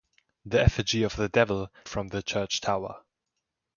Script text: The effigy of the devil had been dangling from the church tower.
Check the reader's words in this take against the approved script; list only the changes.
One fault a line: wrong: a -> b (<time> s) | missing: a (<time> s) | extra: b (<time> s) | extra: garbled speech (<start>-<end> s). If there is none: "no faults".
missing: had been dangling (1.7 s)